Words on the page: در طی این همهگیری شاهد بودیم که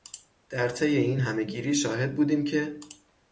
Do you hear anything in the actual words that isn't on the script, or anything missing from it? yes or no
no